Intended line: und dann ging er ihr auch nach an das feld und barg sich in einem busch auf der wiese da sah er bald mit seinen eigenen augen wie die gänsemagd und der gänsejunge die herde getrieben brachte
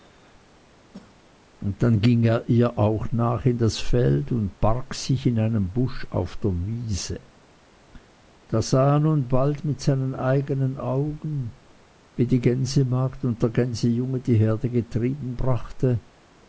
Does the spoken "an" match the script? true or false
false